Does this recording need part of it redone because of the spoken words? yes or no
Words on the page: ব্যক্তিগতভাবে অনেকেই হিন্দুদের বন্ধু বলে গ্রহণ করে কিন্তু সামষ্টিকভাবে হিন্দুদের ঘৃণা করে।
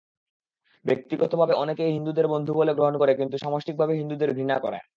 no